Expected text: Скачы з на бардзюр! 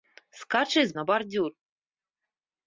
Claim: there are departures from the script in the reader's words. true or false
false